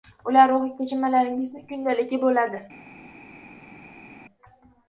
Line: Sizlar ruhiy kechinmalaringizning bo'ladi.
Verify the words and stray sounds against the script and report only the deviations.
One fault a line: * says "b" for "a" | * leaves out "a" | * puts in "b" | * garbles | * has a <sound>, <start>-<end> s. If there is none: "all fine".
* says "Ular" for "Sizlar"
* puts in "kundaligi"